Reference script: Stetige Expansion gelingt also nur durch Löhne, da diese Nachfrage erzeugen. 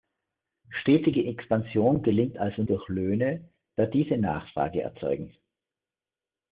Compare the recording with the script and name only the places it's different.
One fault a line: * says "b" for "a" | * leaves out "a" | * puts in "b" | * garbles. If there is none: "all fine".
* leaves out "nur"